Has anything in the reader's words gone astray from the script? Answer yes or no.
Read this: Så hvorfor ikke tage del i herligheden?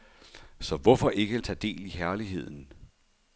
no